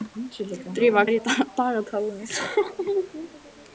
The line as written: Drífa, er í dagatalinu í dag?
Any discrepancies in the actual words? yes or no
no